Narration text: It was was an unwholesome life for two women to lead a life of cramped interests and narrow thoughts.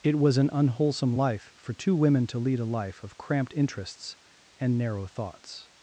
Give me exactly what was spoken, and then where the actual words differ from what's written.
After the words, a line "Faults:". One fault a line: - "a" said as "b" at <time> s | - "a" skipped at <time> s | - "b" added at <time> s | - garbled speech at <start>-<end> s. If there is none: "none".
It was an unwholesome life for two women to lead a life of cramped interests and narrow thoughts.
Faults:
- "was" skipped at 0.4 s